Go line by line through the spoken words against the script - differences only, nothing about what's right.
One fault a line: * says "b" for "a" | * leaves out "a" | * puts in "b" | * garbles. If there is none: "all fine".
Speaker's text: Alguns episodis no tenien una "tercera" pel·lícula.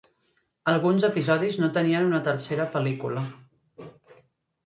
all fine